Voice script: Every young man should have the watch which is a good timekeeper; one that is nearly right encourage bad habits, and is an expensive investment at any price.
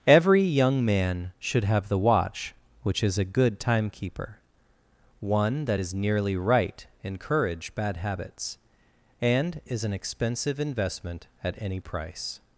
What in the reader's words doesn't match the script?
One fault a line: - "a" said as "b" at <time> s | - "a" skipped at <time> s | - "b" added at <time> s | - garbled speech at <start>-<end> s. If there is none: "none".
none